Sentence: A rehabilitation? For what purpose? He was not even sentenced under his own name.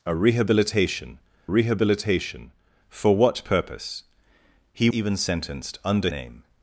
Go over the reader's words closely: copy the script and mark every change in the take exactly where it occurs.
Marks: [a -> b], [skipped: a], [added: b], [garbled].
A rehabilitation? [added: rehabilitation] For what purpose? He [skipped: was not] even sentenced under [skipped: his own] name.